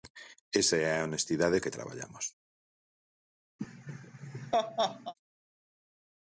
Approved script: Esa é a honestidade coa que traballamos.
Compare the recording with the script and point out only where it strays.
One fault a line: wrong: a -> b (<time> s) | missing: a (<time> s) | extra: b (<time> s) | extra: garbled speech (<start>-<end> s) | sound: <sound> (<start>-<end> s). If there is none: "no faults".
missing: coa (1.6 s)
sound: laugh (3.6-5.1 s)